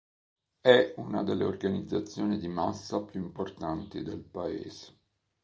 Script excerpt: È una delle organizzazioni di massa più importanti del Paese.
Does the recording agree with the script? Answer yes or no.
yes